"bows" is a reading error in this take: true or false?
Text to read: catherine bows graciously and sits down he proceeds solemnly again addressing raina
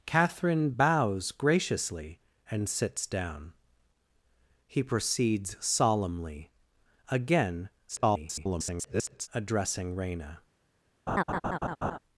false